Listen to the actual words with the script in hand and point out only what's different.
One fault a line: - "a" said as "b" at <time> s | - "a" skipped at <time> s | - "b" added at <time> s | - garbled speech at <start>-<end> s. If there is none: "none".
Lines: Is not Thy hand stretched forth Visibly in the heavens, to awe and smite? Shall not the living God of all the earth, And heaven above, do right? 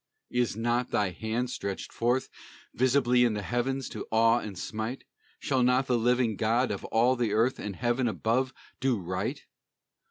none